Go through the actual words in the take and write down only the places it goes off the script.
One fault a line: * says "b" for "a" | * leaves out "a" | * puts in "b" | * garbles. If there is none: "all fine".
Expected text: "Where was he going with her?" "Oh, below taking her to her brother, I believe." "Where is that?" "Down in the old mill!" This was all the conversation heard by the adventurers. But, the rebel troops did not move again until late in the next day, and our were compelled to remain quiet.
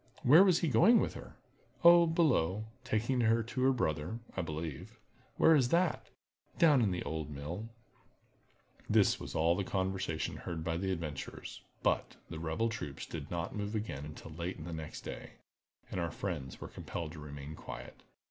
* puts in "friends"